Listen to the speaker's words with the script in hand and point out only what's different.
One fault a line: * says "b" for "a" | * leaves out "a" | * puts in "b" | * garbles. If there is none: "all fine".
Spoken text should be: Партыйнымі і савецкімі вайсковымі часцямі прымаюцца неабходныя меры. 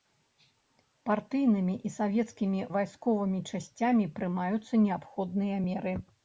all fine